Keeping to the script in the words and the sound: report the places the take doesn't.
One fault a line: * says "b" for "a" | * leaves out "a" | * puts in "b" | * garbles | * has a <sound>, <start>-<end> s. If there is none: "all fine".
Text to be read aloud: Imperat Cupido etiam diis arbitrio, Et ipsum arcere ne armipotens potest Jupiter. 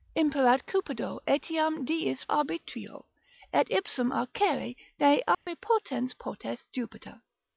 * has a dropout, 5.3-5.5 s